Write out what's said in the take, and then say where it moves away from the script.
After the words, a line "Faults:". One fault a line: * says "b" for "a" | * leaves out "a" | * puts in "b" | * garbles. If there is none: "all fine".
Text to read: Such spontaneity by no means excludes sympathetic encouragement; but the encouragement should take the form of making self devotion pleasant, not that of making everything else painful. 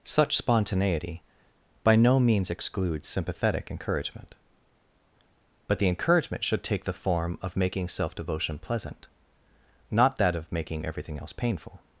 Such spontaneity by no means excludes sympathetic encouragement; but the encouragement should take the form of making self devotion pleasant, not that of making everything else painful.
Faults:
all fine